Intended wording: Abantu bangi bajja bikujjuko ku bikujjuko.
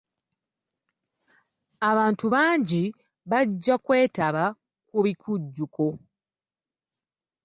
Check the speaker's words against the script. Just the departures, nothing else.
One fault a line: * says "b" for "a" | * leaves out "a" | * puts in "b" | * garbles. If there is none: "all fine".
* says "kwetaba" for "bikujjuko"